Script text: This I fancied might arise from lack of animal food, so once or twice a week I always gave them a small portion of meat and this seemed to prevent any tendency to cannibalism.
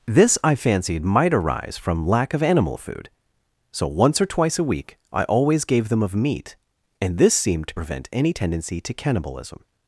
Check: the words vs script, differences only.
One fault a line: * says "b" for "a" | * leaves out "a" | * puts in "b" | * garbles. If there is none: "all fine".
* leaves out "a small portion"